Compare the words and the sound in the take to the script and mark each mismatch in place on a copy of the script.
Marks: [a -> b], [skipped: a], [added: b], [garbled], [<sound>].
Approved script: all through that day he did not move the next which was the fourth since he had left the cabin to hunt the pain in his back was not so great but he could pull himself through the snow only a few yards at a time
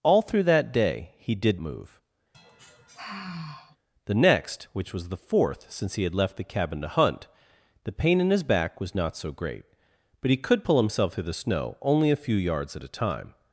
all through that day he did [skipped: not] move [sigh] the next which was the fourth since he had left the cabin to hunt the pain in his back was not so great but he could pull himself through the snow only a few yards at a time